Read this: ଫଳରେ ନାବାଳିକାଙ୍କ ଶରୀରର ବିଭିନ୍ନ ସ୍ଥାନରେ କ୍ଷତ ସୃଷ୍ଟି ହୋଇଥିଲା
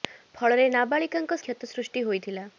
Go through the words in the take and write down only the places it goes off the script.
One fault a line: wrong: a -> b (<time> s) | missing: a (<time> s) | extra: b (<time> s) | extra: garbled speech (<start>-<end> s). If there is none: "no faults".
missing: ଶରୀରର ବିଭିନ୍ନ ସ୍ଥାନରେ (1.4 s)